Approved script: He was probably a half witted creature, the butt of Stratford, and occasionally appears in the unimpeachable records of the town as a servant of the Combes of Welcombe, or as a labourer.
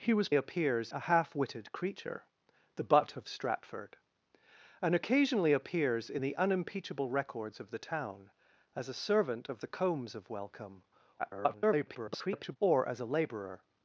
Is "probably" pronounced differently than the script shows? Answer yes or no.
yes